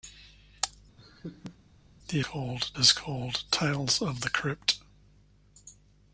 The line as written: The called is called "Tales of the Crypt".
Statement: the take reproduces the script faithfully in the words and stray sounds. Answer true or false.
false